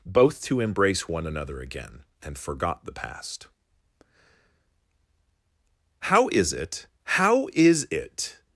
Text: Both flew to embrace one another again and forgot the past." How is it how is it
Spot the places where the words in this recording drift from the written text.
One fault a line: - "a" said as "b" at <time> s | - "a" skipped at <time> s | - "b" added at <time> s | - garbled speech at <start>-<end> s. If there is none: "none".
- "flew" skipped at 0.4 s